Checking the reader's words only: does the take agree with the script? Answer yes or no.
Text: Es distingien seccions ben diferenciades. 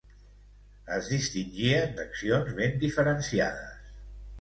yes